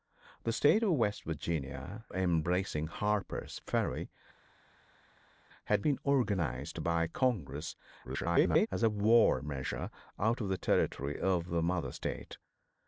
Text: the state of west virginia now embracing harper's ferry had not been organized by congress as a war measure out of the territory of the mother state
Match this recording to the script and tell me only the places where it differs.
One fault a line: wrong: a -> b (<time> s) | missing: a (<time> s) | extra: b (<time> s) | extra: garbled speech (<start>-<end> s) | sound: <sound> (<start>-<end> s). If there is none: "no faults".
missing: now (2.1 s)
missing: not (5.9 s)
extra: garbled speech (8.0-8.7 s)